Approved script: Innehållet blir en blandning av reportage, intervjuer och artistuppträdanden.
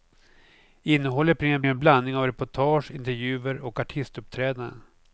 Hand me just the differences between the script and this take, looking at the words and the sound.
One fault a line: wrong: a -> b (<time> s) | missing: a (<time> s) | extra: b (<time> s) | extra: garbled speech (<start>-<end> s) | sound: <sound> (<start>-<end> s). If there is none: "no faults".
extra: en (1.6 s)